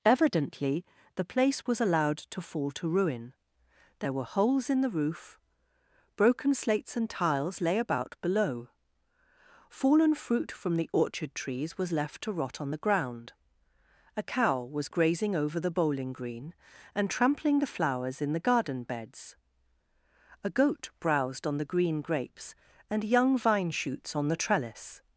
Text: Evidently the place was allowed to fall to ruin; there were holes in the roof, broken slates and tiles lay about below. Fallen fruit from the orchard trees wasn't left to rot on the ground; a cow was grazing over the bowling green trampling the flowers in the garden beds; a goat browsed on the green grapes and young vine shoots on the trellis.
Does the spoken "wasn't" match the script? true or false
false